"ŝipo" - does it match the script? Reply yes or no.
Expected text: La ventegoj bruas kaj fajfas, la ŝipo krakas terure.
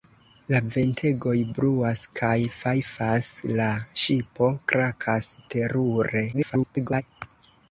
yes